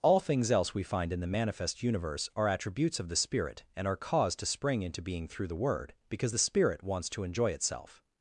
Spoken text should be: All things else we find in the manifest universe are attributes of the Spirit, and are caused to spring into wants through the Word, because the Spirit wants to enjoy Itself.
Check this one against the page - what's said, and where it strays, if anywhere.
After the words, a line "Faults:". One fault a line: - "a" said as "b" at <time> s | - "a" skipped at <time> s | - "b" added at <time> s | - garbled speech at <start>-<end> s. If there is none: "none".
All things else we find in the manifest universe are attributes of the Spirit, and are caused to spring into being through the Word, because the Spirit wants to enjoy Itself.
Faults:
- "wants" said as "being" at 5.0 s